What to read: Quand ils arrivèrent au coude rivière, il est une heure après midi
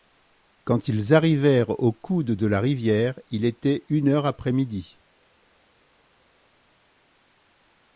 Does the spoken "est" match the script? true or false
false